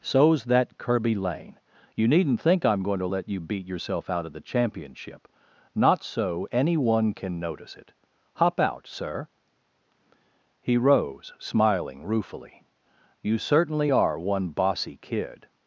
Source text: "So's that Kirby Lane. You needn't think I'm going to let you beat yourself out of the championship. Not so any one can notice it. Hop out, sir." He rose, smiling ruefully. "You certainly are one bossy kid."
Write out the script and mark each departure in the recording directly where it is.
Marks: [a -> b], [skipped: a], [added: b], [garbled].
"So's that Kirby Lane. You needn't think I'm going to let you beat yourself out of the championship. Not so any one can notice it. Hop out, sir." He rose, smiling ruefully. "You certainly are one bossy kid."